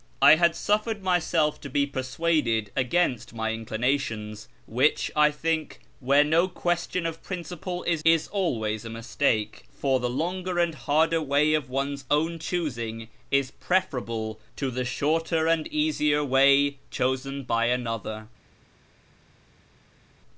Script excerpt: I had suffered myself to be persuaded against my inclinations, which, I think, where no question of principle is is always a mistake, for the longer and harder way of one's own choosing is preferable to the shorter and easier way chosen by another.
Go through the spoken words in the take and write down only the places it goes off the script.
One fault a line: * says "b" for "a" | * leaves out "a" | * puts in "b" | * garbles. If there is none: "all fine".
all fine